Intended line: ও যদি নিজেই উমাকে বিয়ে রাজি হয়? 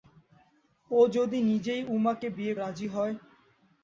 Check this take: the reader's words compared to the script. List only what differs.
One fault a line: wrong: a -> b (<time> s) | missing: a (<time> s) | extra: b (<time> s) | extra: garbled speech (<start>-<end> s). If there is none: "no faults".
no faults